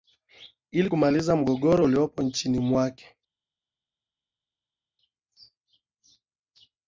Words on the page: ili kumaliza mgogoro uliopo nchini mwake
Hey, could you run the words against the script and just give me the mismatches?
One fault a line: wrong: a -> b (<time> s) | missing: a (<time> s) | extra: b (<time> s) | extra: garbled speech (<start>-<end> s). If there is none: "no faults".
no faults